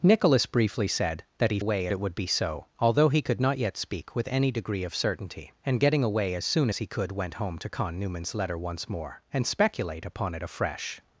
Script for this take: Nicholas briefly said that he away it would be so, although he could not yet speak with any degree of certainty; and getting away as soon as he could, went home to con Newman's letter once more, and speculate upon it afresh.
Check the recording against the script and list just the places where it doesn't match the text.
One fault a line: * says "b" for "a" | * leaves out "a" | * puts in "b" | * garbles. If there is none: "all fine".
all fine